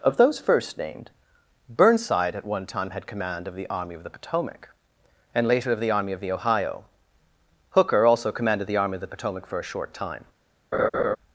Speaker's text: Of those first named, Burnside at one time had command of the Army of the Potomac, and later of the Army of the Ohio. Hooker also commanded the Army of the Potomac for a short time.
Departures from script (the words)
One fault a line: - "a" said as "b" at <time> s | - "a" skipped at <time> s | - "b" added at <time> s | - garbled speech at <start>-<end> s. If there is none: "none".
none